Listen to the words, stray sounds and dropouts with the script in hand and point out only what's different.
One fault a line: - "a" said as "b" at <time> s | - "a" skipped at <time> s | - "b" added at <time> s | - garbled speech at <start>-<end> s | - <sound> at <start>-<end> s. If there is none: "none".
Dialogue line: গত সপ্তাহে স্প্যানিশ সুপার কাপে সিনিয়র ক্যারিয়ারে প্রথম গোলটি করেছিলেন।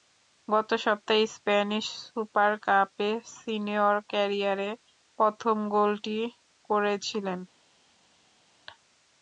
none